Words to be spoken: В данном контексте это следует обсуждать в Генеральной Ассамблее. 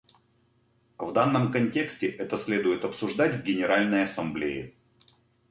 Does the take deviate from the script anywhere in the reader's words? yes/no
no